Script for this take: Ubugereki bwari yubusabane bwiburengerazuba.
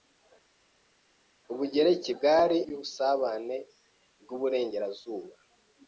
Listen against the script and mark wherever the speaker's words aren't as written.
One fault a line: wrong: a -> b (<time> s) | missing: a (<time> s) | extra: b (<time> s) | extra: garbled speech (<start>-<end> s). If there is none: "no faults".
no faults